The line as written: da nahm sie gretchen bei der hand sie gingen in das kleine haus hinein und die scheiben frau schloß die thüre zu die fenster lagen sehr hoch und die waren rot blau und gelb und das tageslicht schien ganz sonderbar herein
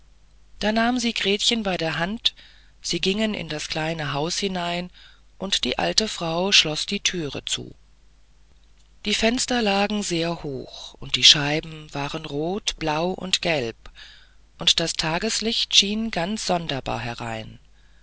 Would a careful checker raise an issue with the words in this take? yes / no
yes